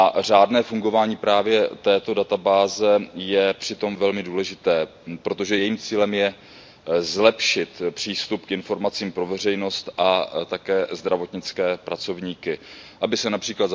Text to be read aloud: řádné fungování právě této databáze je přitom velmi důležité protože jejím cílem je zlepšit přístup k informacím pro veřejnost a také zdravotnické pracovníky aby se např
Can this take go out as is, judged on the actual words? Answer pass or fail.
pass